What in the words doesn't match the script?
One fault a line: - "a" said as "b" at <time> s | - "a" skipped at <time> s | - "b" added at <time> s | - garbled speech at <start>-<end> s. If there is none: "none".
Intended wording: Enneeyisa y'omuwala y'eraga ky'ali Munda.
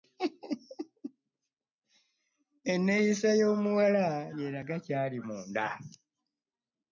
none